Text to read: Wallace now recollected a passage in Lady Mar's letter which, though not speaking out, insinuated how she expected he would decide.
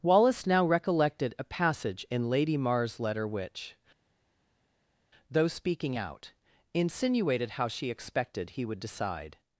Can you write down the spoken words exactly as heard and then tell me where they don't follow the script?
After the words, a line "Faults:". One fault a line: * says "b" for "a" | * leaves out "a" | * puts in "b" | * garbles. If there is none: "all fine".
Wallace now recollected a passage in Lady Mar's letter which, though speaking out, insinuated how she expected he would decide.
Faults:
* leaves out "not"